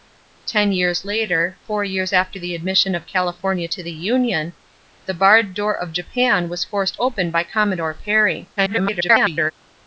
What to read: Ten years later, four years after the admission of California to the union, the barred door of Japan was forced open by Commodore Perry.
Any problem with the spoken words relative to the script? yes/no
yes